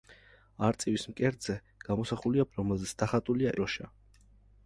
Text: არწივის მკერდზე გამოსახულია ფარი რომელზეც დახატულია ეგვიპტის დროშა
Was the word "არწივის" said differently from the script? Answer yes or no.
no